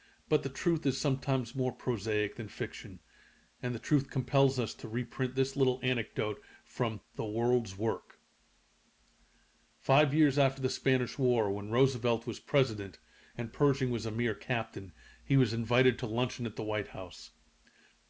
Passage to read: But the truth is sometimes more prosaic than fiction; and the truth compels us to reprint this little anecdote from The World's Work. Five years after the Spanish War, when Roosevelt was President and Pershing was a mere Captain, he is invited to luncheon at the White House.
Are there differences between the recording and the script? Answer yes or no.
yes